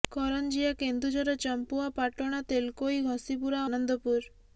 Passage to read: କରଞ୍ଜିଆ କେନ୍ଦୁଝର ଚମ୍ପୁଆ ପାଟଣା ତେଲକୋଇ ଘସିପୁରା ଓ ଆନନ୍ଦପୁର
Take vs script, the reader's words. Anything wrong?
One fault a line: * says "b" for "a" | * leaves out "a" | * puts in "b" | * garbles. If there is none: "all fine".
* leaves out "ଓ"